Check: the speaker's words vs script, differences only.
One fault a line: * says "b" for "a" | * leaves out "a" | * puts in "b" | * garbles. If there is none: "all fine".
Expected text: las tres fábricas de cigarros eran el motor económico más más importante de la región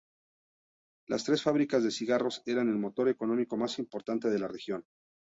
* leaves out "más"